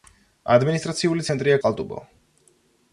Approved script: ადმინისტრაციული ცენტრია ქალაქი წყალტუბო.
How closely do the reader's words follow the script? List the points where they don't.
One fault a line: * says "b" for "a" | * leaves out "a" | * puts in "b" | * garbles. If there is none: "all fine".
* leaves out "ქალაქი"